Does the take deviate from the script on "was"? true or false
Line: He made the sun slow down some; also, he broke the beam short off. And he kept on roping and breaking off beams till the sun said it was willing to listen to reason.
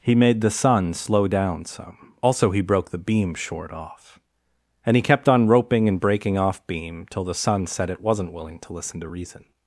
true